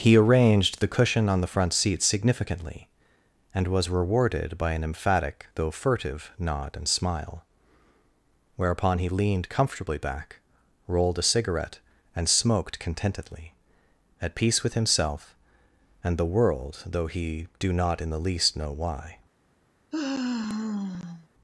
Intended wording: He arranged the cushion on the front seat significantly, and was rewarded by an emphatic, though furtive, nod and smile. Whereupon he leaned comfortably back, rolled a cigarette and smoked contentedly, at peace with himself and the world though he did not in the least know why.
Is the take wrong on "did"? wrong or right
wrong